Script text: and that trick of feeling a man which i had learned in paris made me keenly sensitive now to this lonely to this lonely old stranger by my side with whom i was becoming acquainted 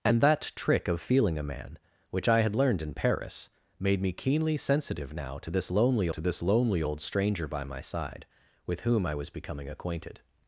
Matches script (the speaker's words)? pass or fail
pass